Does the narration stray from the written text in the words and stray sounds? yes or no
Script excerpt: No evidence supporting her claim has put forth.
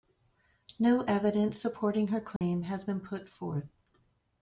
yes